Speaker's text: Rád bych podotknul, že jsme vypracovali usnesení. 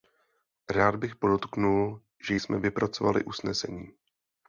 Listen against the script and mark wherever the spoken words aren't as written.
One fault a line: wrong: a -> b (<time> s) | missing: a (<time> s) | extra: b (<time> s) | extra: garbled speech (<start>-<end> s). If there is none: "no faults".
no faults